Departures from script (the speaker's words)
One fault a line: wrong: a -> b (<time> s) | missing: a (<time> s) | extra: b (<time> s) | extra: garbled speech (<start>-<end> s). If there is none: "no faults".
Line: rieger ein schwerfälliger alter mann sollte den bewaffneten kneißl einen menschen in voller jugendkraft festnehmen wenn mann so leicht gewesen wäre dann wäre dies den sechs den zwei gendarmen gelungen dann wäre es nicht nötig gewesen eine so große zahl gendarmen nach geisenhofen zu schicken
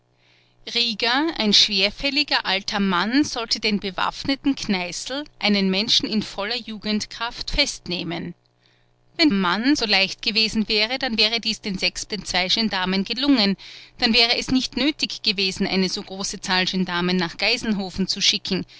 no faults